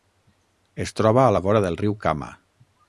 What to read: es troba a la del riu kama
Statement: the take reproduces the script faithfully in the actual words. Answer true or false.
false